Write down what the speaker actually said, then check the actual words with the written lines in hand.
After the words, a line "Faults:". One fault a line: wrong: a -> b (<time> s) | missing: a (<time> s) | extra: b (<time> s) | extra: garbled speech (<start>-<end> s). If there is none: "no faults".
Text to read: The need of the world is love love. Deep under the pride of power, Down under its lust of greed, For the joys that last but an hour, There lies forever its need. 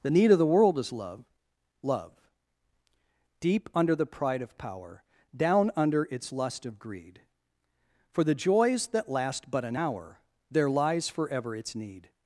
The need of the world is love love. Deep under the pride of power, Down under its lust of greed, For the joys that last but an hour, There lies forever its need.
Faults:
no faults